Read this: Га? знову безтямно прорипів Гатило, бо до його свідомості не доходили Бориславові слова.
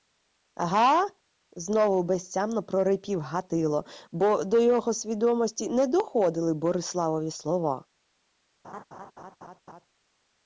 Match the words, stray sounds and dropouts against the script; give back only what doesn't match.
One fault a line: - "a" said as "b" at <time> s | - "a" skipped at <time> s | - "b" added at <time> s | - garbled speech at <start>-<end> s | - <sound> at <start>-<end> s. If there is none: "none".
- laugh at 8.6-9.9 s